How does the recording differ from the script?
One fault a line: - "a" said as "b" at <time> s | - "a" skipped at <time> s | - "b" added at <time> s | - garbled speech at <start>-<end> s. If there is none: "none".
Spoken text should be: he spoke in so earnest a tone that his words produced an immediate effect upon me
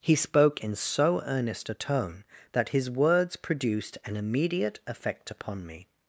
none